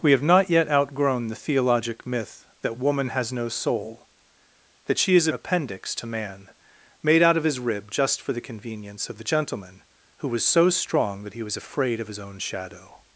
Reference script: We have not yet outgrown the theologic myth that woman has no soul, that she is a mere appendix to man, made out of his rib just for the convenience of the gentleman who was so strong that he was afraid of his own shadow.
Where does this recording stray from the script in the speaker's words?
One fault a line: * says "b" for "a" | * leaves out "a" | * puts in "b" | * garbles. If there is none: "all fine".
* leaves out "mere"